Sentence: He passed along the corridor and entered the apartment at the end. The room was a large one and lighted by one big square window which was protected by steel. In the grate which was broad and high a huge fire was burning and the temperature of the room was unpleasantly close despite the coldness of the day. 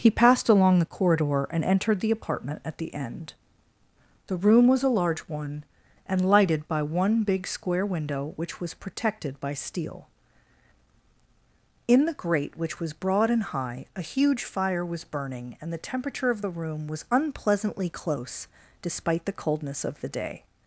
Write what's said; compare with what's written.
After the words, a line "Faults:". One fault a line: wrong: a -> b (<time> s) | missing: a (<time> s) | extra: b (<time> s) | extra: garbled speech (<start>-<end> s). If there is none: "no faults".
He passed along the corridor and entered the apartment at the end. The room was a large one and lighted by one big square window which was protected by steel. In the grate which was broad and high a huge fire was burning and the temperature of the room was unpleasantly close despite the coldness of the day.
Faults:
no faults